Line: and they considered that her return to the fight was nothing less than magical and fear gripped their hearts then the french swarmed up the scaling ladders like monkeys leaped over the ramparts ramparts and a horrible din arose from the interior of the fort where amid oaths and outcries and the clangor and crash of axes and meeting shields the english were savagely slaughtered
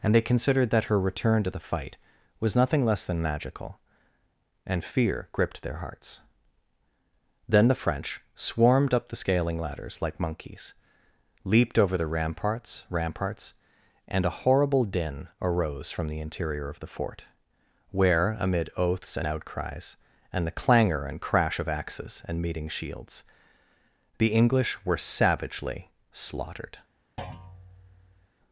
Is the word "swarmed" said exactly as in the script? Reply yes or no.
yes